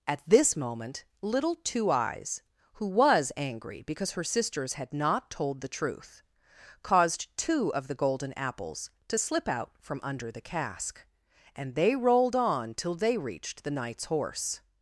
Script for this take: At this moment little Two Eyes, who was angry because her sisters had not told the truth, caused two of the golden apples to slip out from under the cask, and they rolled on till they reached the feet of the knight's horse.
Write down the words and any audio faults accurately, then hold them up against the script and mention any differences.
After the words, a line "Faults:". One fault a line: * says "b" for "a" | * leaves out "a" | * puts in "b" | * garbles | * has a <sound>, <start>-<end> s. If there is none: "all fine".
At this moment little Two Eyes, who was angry because her sisters had not told the truth, caused two of the golden apples to slip out from under the cask, and they rolled on till they reached the knight's horse.
Faults:
* leaves out "feet of the"